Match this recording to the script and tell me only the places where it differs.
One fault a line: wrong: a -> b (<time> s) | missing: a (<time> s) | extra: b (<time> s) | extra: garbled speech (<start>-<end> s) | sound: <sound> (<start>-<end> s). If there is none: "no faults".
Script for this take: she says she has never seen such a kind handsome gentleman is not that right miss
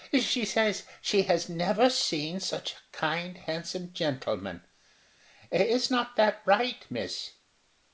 no faults